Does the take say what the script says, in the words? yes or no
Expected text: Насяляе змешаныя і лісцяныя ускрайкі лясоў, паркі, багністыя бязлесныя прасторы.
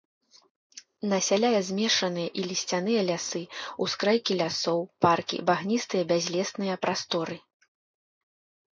no